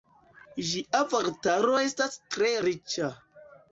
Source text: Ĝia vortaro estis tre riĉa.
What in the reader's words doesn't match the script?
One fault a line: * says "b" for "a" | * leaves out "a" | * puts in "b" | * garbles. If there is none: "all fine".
* says "estas" for "estis"